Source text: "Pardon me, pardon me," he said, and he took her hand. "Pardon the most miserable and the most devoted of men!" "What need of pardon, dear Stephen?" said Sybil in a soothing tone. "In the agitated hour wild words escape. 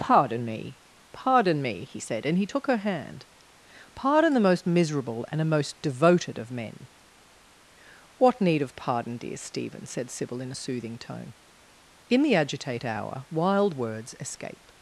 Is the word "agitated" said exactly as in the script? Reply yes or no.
no